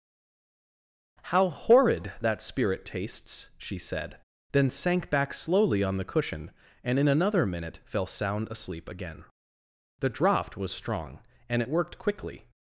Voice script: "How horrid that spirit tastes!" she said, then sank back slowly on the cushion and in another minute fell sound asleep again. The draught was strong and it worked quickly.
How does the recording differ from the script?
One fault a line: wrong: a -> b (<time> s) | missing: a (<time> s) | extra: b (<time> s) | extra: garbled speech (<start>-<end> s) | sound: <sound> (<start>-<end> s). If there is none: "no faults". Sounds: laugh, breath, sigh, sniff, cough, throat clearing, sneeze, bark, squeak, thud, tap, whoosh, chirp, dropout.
no faults